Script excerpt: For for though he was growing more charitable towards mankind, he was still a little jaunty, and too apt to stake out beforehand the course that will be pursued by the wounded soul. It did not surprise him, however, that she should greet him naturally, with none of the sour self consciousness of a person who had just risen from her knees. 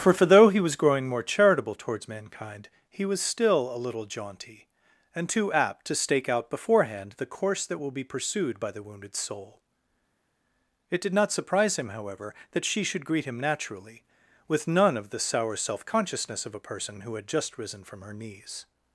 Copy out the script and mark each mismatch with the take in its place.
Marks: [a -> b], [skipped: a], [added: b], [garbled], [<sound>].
For for though he was growing more charitable towards mankind, he was still a little jaunty, and too apt to stake out beforehand the course that will be pursued by the wounded soul. It did not surprise him, however, that she should greet him naturally, with none of the sour self consciousness of a person who had just risen from her knees.